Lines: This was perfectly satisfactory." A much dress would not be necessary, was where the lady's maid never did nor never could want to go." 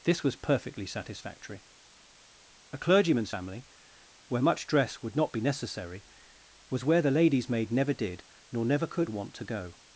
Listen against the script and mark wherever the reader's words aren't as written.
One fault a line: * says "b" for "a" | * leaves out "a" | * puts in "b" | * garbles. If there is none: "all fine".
* puts in "clergyman's family where"